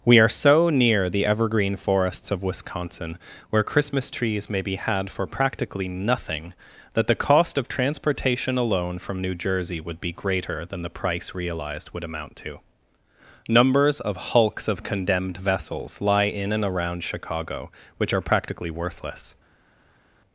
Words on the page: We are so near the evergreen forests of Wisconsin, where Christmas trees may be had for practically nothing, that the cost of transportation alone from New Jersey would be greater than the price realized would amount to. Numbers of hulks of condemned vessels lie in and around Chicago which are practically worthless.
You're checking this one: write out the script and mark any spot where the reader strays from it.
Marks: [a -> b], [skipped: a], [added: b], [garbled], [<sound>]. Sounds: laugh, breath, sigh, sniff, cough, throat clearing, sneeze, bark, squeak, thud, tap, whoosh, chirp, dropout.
We are so near the evergreen forests of Wisconsin, where Christmas trees may be had for practically nothing, that the cost of transportation alone from New Jersey would be greater than the price realized would amount to. Numbers of hulks of condemned vessels lie in and around Chicago which are practically worthless.